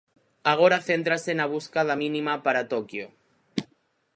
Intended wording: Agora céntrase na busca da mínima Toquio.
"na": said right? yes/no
yes